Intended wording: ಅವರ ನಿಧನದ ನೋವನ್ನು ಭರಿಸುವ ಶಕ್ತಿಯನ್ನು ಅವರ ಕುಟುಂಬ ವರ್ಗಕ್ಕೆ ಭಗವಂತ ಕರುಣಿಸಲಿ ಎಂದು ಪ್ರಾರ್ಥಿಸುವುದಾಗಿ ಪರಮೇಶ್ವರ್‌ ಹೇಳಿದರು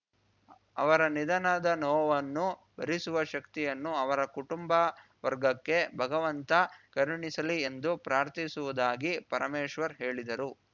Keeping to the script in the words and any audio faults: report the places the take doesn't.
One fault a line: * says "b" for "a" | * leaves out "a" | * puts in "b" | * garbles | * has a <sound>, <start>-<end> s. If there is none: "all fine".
all fine